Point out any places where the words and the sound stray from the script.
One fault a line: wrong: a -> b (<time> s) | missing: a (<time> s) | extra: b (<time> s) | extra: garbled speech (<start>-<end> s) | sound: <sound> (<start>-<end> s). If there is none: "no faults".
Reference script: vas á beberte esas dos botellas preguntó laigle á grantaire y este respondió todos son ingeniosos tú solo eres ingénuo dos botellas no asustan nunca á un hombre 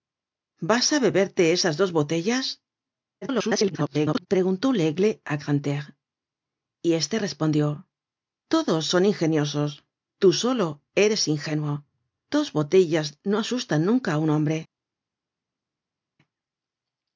extra: garbled speech (3.2-4.3 s)